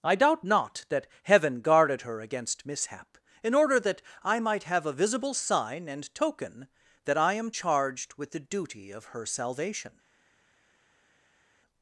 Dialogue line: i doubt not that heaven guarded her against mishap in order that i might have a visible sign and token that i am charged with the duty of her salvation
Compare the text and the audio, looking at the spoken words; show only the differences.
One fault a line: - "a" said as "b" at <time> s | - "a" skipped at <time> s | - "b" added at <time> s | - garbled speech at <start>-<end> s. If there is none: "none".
none